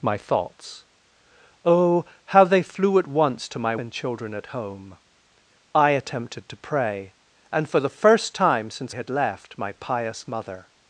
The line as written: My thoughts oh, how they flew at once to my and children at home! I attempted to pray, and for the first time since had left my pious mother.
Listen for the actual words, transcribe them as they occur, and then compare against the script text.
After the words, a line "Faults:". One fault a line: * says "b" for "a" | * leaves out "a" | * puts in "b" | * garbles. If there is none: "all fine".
My thoughts oh, how they flew at once to my and children at home! I attempted to pray, and for the first time since had left my pious mother.
Faults:
all fine